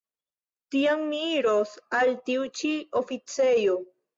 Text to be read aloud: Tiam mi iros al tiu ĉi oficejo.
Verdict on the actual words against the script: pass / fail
pass